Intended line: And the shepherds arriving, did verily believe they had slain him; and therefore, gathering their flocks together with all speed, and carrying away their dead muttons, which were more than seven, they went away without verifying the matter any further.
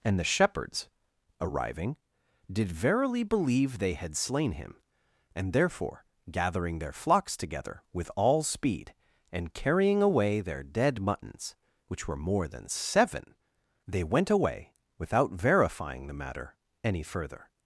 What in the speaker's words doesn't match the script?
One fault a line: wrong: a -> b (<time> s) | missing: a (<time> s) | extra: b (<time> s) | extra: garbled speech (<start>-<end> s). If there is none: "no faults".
no faults